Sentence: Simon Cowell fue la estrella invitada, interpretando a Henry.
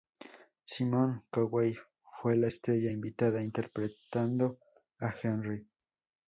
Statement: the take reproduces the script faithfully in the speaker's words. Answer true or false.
true